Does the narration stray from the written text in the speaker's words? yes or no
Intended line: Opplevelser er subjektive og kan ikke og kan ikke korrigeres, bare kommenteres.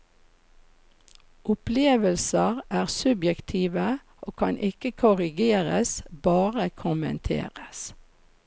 yes